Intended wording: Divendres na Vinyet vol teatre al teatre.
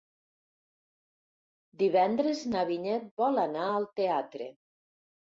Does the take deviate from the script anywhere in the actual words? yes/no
yes